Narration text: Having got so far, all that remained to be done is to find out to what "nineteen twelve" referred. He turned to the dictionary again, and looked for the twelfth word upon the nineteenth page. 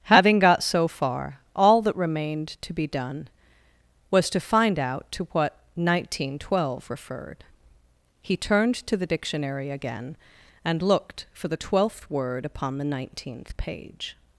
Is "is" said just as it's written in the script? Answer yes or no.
no